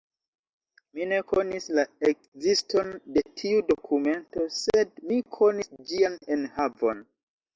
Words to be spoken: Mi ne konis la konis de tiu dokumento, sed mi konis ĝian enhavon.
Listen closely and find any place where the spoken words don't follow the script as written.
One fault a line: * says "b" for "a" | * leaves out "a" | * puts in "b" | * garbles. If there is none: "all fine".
* says "ekziston" for "konis"